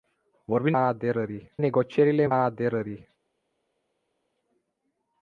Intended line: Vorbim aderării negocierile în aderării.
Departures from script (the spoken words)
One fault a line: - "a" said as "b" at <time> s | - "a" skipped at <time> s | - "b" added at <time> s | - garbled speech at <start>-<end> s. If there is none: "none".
none